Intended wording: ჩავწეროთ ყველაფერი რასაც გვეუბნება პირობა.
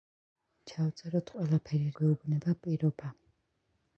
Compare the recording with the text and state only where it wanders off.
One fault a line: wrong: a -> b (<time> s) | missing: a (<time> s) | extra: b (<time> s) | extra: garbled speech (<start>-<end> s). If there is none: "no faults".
missing: რასაც (1.9 s)